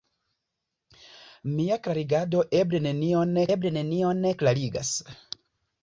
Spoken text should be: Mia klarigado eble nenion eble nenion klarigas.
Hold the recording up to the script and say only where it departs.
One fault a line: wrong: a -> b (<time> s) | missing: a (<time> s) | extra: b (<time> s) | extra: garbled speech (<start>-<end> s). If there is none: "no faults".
no faults